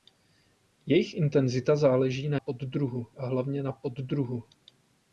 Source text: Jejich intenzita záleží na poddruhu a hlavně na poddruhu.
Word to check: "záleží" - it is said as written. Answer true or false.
true